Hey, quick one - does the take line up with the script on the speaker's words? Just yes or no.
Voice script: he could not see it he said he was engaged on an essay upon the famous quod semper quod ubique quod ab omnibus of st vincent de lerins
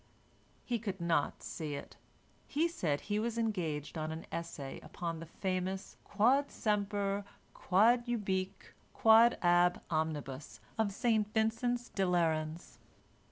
yes